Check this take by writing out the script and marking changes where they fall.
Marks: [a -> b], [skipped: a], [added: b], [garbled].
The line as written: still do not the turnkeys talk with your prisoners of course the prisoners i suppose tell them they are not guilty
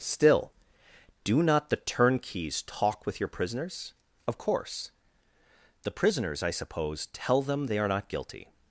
still do not the turnkeys talk with your prisoners of course the prisoners i suppose tell them they are not guilty